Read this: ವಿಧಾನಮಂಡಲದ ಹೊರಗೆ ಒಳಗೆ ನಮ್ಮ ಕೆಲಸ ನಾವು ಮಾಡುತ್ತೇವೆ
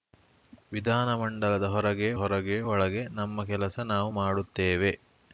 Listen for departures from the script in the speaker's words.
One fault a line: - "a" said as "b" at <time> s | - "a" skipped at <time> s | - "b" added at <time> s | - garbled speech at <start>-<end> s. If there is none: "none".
- "ಹೊರಗೆ" added at 2.1 s